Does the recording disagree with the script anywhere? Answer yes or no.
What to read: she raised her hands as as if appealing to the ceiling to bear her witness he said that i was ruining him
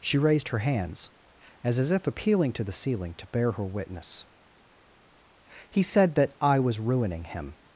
no